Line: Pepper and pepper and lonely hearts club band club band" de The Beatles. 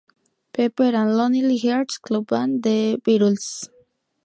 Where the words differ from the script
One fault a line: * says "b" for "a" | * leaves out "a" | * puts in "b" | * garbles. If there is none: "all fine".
* leaves out "pepper and"
* leaves out "club band"